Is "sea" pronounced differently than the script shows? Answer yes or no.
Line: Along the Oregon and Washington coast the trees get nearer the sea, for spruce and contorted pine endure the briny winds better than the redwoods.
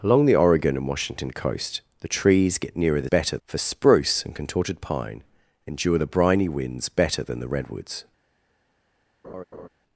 yes